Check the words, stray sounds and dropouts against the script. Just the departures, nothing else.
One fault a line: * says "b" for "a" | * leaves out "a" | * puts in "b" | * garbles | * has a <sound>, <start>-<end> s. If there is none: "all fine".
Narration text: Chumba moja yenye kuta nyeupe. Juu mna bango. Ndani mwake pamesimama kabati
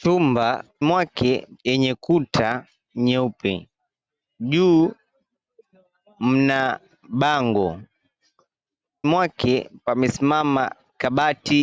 * says "mwake" for "moja"
* leaves out "Ndani"